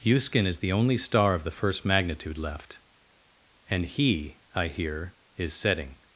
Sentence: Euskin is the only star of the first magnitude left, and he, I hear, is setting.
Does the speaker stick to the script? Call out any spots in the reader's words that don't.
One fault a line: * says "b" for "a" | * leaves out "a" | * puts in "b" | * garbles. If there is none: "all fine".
all fine